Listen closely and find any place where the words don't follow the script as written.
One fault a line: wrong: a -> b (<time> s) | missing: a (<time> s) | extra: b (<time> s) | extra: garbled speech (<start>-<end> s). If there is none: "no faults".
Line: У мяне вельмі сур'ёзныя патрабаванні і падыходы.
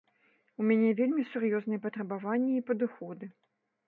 no faults